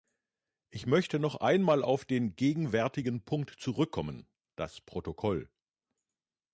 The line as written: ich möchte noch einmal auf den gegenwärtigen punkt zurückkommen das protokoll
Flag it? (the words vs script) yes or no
no